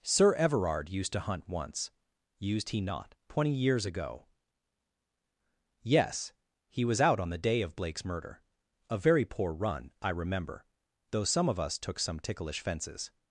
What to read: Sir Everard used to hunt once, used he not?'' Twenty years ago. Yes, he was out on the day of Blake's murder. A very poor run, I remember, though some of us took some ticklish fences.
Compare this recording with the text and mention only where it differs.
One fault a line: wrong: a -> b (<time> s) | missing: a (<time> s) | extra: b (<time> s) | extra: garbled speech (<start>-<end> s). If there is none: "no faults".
no faults